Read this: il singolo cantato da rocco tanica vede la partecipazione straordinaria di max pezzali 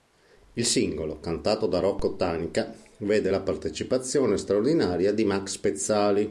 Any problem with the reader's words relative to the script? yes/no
no